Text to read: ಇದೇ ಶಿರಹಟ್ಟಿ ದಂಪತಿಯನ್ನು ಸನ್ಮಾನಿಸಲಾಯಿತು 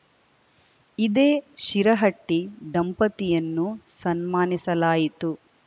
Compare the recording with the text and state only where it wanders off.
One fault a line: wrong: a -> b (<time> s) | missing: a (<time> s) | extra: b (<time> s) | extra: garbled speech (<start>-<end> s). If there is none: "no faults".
no faults